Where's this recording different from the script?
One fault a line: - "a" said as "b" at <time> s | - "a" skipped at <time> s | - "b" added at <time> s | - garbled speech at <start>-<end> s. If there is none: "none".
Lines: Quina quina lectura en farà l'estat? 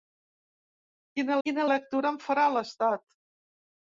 none